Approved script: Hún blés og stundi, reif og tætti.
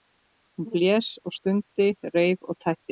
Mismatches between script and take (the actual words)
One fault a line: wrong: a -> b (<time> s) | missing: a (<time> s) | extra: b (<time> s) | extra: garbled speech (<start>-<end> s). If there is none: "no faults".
no faults